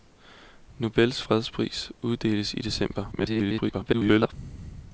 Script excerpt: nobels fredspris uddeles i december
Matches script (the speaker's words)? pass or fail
fail